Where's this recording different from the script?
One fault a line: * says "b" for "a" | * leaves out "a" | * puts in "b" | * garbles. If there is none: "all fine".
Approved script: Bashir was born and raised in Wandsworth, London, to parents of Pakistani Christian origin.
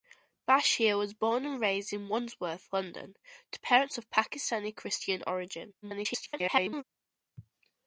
* garbles